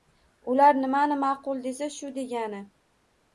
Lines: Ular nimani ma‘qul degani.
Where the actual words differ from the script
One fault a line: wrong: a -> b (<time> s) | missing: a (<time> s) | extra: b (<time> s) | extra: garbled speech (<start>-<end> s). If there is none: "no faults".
extra: desa shu (1.7 s)